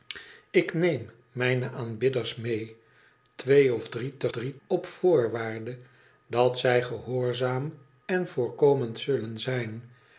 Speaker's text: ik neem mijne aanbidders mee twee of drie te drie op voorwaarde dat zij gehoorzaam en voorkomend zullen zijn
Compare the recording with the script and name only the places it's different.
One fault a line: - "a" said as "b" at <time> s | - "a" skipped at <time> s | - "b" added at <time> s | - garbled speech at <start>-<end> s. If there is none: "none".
none